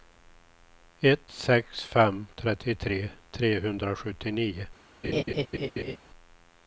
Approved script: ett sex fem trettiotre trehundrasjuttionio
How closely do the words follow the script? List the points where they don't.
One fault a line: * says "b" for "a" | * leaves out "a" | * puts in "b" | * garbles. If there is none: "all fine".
all fine